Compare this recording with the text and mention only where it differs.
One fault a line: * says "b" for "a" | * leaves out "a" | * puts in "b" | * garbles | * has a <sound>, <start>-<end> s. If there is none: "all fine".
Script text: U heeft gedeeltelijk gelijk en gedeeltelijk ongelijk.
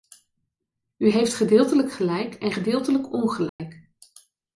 * has a dropout, 3.5-3.6 s